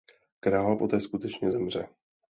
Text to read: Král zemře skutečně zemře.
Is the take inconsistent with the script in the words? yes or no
yes